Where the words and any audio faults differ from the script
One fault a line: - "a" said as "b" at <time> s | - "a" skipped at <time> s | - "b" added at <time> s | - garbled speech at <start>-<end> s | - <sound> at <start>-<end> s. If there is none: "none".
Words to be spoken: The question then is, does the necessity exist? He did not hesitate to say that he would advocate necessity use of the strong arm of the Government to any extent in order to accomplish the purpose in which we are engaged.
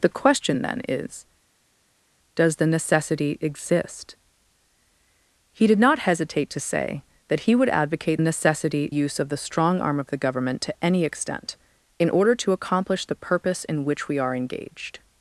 none